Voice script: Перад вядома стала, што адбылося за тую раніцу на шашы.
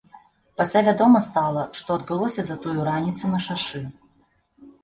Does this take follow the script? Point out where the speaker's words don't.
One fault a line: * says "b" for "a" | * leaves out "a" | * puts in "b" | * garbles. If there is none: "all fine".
* says "Пасля" for "Перад"